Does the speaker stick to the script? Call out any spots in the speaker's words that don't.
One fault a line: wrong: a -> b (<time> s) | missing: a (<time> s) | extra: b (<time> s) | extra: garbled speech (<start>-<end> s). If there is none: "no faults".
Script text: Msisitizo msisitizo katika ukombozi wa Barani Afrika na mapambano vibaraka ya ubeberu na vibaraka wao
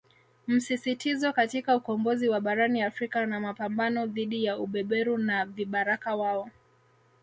missing: msisitizo (1.3 s)
wrong: vibaraka -> dhidi (4.1 s)